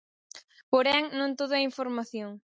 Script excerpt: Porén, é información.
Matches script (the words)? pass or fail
fail